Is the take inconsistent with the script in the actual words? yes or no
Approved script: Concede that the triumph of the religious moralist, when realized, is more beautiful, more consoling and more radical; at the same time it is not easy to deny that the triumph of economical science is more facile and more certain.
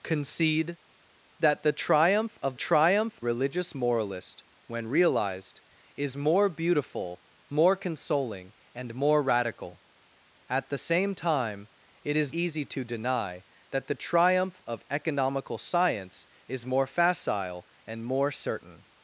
yes